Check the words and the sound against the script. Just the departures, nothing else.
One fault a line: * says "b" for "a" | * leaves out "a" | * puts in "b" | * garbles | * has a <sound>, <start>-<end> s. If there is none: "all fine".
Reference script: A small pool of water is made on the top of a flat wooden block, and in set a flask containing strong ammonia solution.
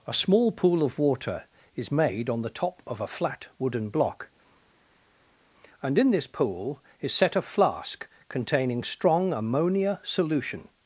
* puts in "this pool is"